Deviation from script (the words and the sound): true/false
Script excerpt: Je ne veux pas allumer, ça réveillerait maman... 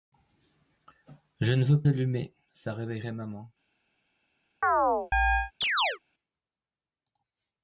true